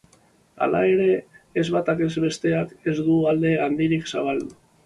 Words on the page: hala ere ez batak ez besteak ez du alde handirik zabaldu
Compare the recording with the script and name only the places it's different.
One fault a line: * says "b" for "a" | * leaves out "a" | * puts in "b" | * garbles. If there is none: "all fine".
all fine